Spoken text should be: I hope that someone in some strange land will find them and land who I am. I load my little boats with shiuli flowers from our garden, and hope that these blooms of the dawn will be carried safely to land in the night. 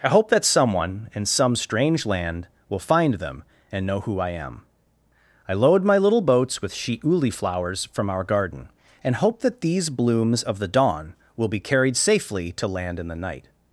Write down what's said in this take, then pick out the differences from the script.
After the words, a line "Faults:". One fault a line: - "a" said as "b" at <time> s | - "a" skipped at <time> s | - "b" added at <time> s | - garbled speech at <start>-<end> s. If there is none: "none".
I hope that someone in some strange land will find them and know who I am. I load my little boats with shiuli flowers from our garden, and hope that these blooms of the dawn will be carried safely to land in the night.
Faults:
- "land" said as "know" at 3.8 s